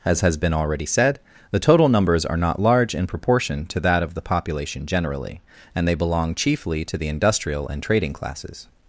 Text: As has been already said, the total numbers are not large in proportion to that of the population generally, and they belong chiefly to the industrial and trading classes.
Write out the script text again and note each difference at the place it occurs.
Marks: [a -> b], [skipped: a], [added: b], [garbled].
As has been already said, the total numbers are not large in proportion to that of the population generally, and they belong chiefly to the industrial and trading classes.